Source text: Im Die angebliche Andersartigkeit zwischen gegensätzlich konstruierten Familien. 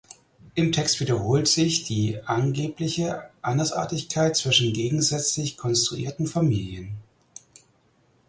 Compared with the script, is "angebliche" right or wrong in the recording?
right